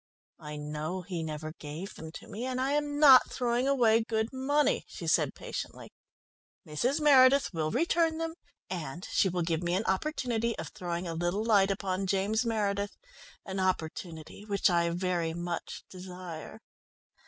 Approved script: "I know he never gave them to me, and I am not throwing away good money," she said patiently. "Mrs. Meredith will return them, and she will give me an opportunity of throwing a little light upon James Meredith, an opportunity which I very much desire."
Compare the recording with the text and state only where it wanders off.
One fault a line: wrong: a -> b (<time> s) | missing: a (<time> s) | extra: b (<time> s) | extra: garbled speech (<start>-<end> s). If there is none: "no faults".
no faults